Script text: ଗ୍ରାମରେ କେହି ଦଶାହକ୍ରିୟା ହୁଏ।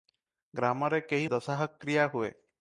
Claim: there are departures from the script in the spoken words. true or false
false